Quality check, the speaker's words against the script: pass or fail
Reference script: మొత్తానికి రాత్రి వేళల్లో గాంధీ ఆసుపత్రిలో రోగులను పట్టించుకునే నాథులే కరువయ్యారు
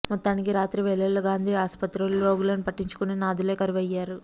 pass